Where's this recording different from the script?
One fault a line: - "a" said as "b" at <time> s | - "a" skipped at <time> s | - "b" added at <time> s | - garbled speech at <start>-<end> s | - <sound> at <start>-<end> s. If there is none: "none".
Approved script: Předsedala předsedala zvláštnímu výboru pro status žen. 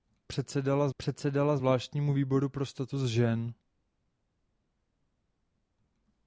none